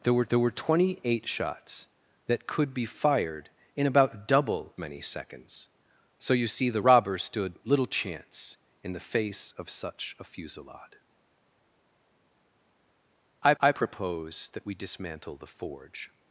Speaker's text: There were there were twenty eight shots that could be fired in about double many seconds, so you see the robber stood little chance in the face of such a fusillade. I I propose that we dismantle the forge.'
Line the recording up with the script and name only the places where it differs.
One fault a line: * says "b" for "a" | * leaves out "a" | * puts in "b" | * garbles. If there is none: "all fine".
all fine